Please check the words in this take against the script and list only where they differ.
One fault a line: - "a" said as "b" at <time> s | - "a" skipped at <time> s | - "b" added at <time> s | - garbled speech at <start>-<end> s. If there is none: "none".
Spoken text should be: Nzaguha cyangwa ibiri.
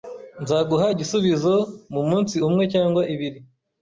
- "igisubizo mumunsi umwe" added at 0.9 s